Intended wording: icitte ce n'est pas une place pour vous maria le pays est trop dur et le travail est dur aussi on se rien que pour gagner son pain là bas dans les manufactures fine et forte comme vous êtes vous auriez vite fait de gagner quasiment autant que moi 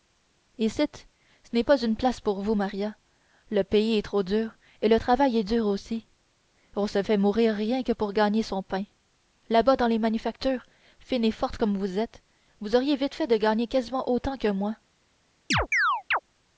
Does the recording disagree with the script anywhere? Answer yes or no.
yes